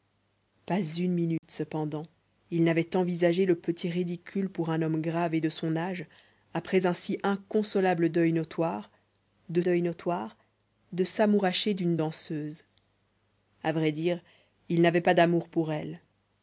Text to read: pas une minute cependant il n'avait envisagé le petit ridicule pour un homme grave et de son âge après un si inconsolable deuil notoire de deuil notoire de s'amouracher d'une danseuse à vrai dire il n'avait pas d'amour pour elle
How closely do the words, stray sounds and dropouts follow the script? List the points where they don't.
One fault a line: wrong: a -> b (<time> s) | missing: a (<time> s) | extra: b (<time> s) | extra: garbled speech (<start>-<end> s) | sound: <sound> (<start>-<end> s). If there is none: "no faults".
sound: dropout (1.4-1.4 s)